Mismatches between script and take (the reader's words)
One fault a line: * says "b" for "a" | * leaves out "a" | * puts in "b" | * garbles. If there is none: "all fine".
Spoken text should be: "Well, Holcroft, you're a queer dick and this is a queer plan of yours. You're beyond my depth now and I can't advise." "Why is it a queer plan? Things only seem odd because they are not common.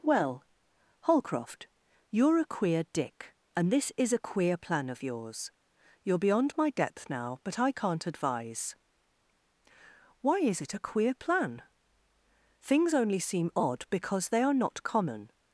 * says "but" for "and"